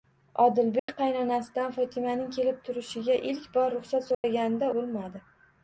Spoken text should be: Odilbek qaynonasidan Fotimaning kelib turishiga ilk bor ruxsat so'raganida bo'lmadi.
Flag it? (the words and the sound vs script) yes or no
yes